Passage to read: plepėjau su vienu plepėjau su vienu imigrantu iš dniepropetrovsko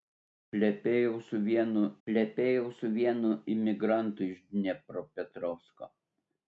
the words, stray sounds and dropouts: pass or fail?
pass